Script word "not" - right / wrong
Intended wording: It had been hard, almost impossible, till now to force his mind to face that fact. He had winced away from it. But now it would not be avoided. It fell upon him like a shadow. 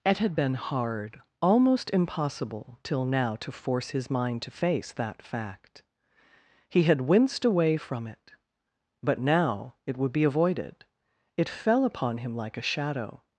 wrong